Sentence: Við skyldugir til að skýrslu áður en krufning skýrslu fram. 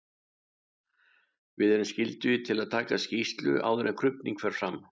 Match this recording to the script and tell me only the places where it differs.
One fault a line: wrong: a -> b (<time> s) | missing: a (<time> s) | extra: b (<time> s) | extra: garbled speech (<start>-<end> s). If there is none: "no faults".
extra: erum (1.8 s)
extra: taka (2.8 s)
wrong: skýrslu -> fer (4.4 s)